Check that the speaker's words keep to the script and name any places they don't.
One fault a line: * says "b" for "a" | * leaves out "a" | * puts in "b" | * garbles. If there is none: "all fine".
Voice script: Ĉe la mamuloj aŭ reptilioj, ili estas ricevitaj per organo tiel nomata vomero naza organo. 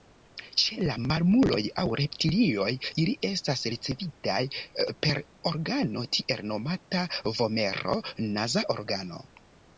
all fine